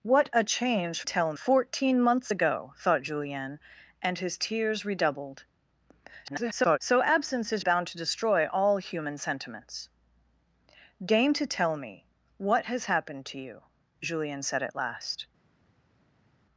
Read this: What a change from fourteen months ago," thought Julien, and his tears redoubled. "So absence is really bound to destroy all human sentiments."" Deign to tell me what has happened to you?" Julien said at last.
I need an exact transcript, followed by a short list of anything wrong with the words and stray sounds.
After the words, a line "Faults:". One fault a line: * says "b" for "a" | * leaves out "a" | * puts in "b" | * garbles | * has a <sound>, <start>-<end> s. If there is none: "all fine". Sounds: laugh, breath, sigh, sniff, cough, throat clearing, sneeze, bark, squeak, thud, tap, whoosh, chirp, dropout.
What a change tell fourteen months ago," thought Julien, and his tears redoubled. [garbled] "So absence is bound to destroy all human sentiments."" Deign to tell me what has happened to you?" Julien said at last.
Faults:
* says "tell" for "from"
* garbles
* leaves out "really"